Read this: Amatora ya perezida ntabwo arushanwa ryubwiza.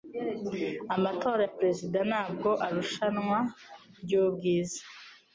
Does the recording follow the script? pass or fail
pass